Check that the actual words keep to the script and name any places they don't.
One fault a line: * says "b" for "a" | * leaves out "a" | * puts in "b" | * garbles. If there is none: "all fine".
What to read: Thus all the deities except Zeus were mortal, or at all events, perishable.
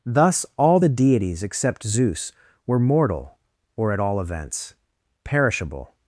all fine